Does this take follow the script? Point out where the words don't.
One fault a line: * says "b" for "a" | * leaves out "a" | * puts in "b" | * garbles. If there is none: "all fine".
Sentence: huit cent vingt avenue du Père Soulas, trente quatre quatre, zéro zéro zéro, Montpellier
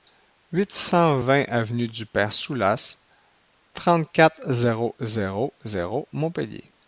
* leaves out "quatre"